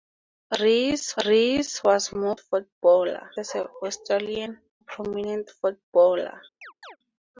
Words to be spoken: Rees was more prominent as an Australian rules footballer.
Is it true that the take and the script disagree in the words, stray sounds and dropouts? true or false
true